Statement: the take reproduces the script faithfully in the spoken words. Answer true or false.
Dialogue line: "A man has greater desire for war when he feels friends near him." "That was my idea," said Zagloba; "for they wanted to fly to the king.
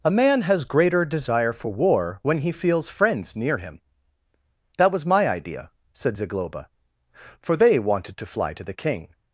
true